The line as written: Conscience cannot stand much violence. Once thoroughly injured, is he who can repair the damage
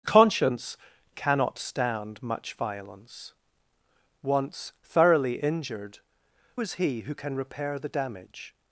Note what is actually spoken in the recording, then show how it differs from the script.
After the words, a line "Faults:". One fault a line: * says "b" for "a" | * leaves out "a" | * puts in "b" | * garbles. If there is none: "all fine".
Conscience cannot stand much violence. Once thoroughly injured, is he who can repair the damage
Faults:
all fine